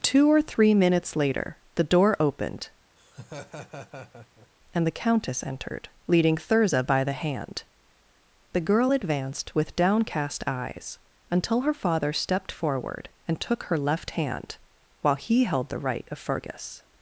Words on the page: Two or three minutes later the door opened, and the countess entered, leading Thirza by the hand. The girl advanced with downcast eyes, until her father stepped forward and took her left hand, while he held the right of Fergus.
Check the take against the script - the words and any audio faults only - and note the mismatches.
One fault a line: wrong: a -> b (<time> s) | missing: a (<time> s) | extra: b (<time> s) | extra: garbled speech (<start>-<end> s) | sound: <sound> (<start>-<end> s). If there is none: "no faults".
sound: laugh (3.0-4.5 s)